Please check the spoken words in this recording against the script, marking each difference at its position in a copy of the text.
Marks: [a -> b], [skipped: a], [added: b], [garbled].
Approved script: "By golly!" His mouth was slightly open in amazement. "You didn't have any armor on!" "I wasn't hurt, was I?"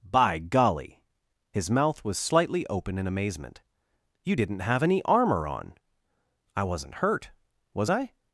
"By golly!" His mouth was slightly open in amazement. "You didn't have any armor on!" "I wasn't hurt, was I?"